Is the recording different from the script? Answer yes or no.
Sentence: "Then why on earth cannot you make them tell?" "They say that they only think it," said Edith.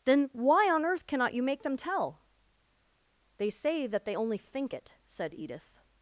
no